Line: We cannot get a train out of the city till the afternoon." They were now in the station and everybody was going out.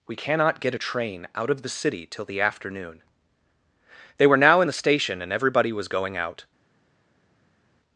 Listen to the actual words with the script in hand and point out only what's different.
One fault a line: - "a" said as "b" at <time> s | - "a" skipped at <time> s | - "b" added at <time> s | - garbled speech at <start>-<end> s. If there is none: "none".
none